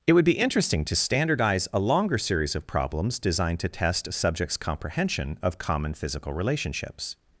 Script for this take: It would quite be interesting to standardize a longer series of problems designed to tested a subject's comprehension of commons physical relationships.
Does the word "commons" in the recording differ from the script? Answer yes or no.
yes